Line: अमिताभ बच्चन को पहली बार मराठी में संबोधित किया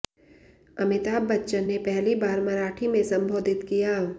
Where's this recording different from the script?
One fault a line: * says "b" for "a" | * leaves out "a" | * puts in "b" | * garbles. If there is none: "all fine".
* says "ने" for "को"